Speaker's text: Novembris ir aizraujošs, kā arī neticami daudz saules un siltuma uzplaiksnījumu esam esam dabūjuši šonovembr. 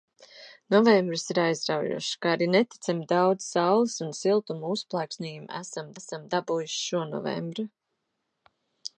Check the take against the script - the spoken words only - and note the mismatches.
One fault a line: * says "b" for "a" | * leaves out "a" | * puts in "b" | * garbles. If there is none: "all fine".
all fine